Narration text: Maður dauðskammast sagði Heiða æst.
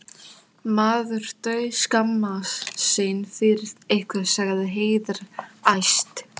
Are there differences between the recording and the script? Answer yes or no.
yes